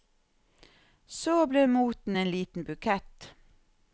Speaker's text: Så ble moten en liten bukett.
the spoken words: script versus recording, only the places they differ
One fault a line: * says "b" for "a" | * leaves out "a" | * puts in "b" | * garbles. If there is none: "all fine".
all fine